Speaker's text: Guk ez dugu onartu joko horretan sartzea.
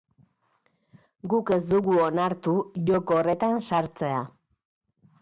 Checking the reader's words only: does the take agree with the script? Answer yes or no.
yes